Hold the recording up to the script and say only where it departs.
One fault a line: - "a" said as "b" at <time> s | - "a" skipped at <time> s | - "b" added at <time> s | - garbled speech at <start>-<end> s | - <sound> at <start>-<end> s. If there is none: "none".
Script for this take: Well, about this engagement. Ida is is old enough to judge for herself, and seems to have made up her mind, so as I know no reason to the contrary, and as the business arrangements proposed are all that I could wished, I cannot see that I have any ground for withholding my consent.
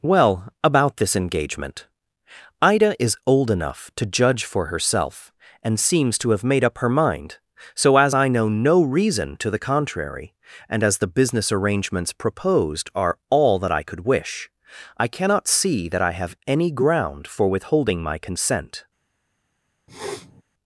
- "is" skipped at 3.2 s
- "wished" said as "wish" at 14.0 s
- sniff at 19.9-20.4 s